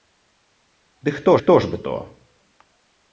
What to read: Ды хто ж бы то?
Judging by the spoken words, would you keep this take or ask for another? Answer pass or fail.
fail